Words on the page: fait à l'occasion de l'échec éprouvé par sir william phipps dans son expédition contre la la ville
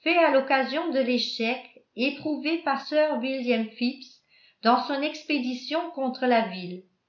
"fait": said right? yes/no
yes